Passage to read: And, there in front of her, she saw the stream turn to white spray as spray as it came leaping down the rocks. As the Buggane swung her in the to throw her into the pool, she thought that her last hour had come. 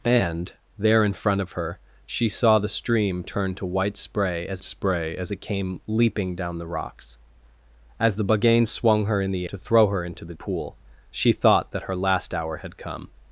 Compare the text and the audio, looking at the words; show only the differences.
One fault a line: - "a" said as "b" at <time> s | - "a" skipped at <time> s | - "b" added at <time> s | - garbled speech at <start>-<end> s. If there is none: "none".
none